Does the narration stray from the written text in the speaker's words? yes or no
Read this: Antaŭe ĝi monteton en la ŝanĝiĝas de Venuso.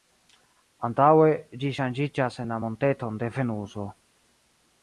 yes